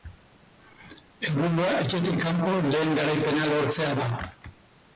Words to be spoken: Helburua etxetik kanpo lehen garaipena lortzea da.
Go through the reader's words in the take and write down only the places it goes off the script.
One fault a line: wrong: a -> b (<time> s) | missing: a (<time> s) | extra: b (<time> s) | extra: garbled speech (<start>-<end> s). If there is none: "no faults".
no faults